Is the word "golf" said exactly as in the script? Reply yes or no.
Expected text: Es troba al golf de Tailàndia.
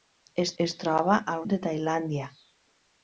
no